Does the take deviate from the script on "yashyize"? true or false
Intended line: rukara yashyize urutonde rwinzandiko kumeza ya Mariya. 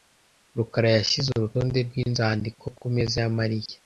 false